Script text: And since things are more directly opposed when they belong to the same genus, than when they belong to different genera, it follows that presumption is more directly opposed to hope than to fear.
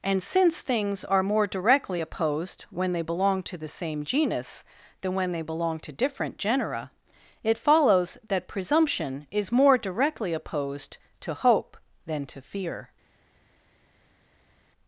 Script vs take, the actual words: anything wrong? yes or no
no